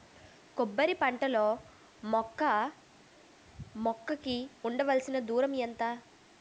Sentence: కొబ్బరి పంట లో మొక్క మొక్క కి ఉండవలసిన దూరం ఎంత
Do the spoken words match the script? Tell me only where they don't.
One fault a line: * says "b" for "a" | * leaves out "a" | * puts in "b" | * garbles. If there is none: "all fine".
all fine